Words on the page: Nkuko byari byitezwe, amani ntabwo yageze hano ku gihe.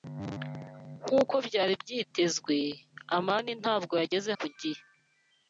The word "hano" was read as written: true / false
false